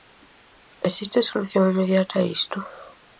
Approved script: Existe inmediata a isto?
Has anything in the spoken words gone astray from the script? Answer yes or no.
yes